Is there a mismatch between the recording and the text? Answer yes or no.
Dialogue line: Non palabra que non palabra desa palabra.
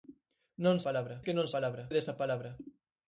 no